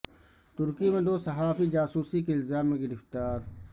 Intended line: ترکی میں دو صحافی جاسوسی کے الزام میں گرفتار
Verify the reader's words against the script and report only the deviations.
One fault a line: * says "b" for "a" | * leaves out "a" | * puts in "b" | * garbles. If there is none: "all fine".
all fine